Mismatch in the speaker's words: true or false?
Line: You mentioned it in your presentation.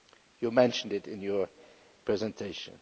false